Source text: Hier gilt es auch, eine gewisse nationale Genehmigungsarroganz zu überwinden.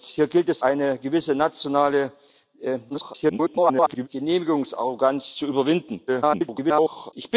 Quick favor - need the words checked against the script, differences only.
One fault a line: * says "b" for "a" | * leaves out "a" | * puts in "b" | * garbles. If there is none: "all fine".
* leaves out "auch"
* garbles
* garbles